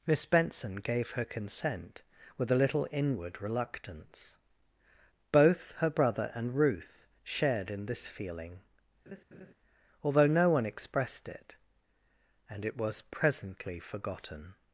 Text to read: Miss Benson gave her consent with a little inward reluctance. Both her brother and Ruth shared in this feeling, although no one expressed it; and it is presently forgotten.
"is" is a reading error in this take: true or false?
true